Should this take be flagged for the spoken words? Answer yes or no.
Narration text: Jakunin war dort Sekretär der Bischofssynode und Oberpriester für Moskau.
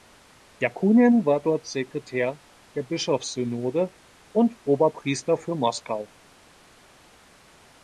no